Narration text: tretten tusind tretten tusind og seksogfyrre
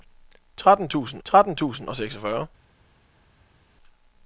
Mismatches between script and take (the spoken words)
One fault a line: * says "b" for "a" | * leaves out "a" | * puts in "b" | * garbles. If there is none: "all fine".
all fine